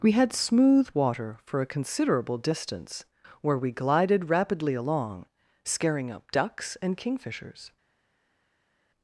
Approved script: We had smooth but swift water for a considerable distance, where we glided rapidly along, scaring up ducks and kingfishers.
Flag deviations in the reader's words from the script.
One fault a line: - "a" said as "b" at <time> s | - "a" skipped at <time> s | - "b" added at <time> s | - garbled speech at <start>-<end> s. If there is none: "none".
- "but swift" skipped at 0.9 s